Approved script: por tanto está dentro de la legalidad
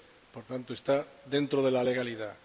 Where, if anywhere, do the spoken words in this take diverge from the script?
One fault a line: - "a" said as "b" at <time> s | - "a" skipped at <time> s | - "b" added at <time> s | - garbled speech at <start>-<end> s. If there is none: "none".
none